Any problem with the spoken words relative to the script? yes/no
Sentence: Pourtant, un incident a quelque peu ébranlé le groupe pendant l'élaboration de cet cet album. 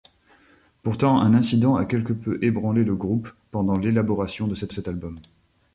no